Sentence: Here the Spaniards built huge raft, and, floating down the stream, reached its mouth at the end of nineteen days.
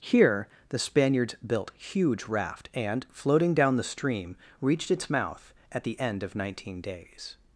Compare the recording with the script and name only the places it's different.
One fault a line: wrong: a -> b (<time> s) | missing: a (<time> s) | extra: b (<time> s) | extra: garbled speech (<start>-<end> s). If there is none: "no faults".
no faults